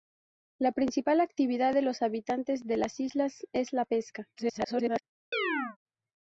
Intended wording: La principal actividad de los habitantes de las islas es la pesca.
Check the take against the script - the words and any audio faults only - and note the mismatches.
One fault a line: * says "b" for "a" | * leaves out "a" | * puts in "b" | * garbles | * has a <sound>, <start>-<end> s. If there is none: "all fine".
* garbles
* has a chirp, 5.3-5.8 s